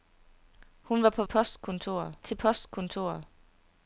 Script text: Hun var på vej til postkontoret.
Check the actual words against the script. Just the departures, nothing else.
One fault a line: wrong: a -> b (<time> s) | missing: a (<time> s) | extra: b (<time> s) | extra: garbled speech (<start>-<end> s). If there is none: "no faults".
wrong: vej -> postkontoret (1.2 s)